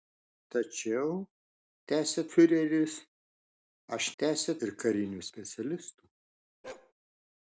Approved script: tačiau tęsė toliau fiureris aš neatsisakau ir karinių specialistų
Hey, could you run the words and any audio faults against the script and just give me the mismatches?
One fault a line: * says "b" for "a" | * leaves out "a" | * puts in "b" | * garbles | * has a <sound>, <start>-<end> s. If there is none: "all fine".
* leaves out "toliau"
* says "tęsė" for "neatsisakau"
* has a bark, 6.6-6.9 s